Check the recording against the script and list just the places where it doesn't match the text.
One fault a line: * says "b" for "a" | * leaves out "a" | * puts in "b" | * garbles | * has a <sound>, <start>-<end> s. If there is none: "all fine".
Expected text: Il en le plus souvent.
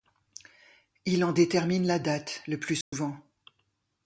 * puts in "détermine la date"
* has a dropout, 2.8-2.9 s